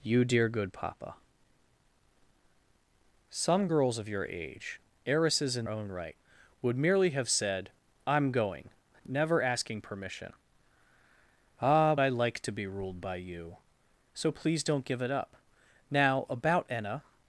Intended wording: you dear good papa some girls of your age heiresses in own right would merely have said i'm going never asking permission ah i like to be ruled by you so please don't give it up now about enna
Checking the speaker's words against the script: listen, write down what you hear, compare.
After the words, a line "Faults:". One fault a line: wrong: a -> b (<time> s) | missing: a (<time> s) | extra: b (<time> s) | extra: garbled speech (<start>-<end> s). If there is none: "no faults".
you dear good papa some girls of your age heiresses in own right would merely have said i'm going never asking permission ah i like to be ruled by you so please don't give it up now about enna
Faults:
no faults